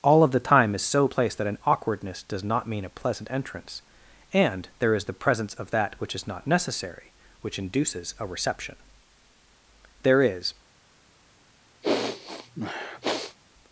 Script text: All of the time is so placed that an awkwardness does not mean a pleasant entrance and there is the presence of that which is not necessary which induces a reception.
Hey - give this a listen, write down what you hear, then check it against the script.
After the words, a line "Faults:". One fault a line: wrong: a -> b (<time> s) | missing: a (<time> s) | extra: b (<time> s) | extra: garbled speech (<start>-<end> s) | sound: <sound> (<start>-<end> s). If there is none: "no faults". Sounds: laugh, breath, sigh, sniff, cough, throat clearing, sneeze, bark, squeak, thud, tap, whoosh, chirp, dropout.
All of the time is so placed that an awkwardness does not mean a pleasant entrance and there is the presence of that which is not necessary which induces a reception. There is
Faults:
extra: There is (10.0 s)
sound: sniff (11.8-13.4 s)